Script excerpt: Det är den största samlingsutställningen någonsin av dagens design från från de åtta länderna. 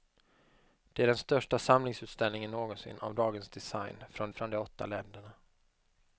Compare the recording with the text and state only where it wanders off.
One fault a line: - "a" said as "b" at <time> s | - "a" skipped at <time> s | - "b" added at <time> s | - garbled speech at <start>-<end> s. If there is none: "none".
none